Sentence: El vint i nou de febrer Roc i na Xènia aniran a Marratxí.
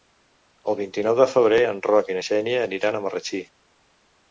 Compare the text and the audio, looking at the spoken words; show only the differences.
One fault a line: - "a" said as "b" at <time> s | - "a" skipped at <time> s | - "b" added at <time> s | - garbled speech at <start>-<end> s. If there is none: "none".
- "en" added at 1.7 s